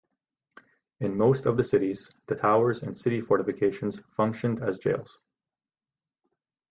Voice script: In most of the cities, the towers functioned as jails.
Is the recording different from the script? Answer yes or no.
yes